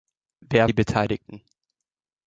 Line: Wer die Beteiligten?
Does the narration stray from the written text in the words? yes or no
no